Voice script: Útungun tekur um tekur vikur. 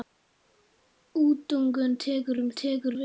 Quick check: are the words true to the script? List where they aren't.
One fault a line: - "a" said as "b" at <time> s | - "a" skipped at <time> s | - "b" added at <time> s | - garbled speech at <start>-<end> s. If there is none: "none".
none